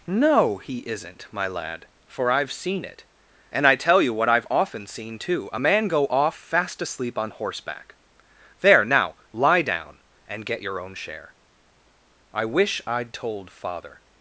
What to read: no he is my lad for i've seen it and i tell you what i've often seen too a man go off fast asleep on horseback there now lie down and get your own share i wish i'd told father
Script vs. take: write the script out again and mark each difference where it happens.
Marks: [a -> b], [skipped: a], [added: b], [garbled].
no he [is -> isn't] my lad for i've seen it and i tell you what i've often seen too a man go off fast asleep on horseback there now lie down and get your own share i wish i'd told father